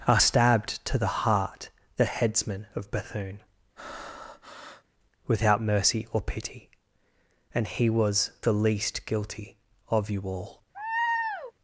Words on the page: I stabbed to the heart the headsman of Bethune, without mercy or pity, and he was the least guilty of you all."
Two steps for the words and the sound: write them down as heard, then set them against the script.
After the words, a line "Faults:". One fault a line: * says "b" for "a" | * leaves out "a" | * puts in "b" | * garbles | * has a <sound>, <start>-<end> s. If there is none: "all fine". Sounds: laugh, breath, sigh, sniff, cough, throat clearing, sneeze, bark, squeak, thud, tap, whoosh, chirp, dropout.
are stabbed to the heart the headsman of Bethune, without mercy or pity, and he was the least guilty of you all."
Faults:
* says "are" for "I"
* has a breath, 3.8-4.8 s
* has a laugh, 10.7-11.5 s